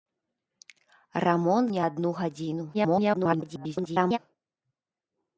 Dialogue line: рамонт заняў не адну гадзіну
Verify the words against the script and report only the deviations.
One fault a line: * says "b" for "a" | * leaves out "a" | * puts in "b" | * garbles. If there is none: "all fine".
* leaves out "заняў"
* garbles